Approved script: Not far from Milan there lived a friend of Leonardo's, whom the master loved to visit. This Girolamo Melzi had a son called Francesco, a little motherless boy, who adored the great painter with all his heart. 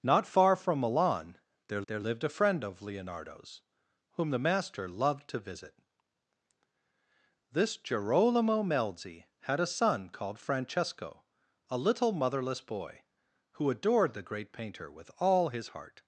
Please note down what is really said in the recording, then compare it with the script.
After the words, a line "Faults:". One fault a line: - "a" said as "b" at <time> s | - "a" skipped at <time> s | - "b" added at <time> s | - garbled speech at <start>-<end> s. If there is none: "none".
Not far from Milan there there lived a friend of Leonardo's, whom the master loved to visit. This Girolamo Melzi had a son called Francesco, a little motherless boy, who adored the great painter with all his heart.
Faults:
- "there" added at 1.9 s